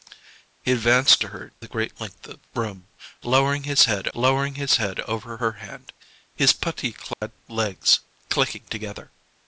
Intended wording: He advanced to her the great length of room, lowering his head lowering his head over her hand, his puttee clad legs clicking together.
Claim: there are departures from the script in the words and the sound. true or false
true